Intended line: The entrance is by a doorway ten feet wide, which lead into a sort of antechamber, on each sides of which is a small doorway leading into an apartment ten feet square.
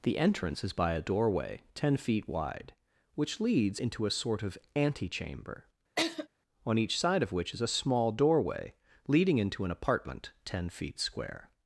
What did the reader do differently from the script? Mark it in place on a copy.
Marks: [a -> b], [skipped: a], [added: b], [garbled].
The entrance is by a doorway ten feet wide, which [lead -> leads] into a sort of antechamber, on each [sides -> side] of which is a small doorway leading into an apartment ten feet square.